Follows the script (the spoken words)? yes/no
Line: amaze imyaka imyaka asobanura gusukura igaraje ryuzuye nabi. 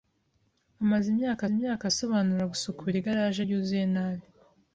yes